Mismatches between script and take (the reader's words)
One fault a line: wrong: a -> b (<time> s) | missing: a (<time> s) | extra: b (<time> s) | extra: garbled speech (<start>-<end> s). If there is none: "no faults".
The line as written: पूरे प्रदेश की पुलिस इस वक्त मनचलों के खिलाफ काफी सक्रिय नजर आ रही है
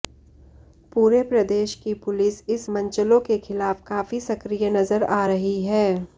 missing: वक्त (2.7 s)